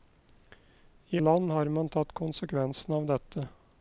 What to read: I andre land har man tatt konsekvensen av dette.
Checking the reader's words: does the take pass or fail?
fail